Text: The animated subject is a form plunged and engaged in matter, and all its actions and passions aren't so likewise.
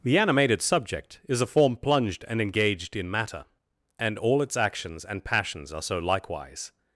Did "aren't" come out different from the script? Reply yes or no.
yes